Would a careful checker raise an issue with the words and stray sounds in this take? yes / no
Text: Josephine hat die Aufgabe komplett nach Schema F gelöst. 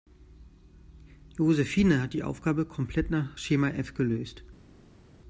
no